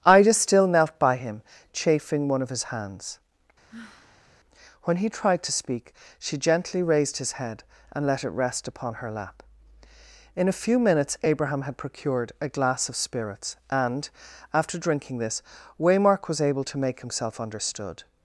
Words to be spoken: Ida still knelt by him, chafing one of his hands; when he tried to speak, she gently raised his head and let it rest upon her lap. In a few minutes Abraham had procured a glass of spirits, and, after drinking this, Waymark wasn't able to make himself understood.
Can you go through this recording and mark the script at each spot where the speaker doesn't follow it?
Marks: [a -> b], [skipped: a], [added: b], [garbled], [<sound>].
Ida still knelt by him, chafing one of his hands; [sigh] when he tried to speak, she gently raised his head and let it rest upon her lap. In a few minutes Abraham had procured a glass of spirits, and, after drinking this, Waymark [wasn't -> was] able to make himself understood.